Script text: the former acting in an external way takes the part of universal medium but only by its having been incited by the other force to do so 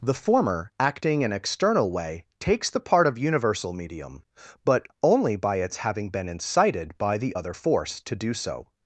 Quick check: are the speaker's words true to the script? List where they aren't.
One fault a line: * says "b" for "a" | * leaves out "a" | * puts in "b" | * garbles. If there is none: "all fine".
* leaves out "in"